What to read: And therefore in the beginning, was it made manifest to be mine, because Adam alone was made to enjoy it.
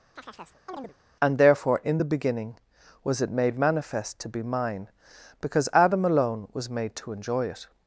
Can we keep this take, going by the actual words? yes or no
yes